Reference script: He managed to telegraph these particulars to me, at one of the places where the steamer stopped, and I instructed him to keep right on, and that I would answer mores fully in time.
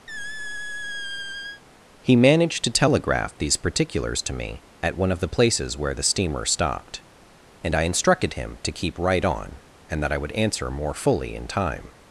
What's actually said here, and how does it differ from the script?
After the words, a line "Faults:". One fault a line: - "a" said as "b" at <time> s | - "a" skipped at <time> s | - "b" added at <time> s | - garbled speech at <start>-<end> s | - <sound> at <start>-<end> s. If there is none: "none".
He managed to telegraph these particulars to me, at one of the places where the steamer stopped, and I instructed him to keep right on, and that I would answer more fully in time.
Faults:
- squeak at 0.1-1.6 s
- "mores" said as "more" at 10.7 s